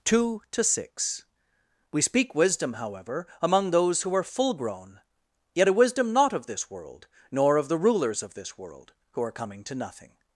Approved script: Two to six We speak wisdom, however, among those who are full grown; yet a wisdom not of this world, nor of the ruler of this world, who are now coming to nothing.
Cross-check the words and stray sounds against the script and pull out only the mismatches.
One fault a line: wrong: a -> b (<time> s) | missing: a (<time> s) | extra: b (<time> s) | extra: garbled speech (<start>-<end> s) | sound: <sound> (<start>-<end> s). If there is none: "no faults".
wrong: ruler -> rulers (7.8 s)
missing: now (9.3 s)